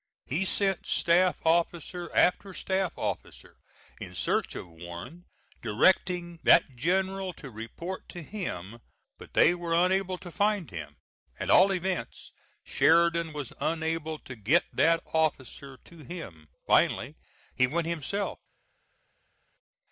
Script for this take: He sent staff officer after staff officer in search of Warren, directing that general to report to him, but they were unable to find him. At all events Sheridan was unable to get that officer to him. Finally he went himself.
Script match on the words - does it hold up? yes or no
yes